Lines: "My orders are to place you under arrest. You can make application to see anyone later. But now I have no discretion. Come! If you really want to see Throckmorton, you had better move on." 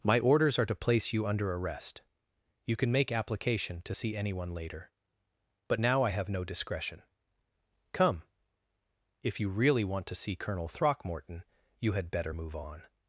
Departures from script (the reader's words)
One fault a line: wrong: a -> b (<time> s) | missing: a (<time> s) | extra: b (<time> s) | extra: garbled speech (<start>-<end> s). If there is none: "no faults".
extra: Colonel (10.3 s)